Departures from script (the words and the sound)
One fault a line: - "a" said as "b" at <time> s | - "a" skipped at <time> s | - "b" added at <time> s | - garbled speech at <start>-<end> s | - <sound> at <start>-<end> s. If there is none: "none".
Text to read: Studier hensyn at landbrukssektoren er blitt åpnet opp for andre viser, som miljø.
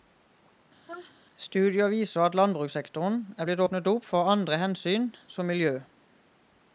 - sneeze at 0.9-1.1 s
- "hensyn" said as "viser" at 1.9 s
- "viser" said as "hensyn" at 4.6 s